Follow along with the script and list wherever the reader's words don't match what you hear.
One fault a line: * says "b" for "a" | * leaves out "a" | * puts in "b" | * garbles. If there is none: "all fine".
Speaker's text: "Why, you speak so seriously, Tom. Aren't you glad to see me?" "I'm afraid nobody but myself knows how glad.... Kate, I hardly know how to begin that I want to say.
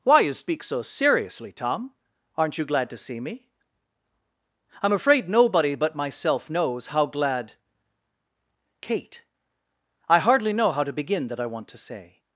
all fine